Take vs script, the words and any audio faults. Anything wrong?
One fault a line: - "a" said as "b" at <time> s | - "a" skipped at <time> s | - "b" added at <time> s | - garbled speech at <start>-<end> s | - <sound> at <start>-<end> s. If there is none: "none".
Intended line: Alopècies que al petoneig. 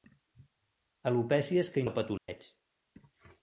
- dropout at 2.2-2.3 s